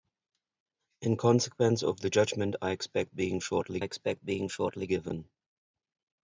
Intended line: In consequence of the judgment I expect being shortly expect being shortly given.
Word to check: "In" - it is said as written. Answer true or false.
true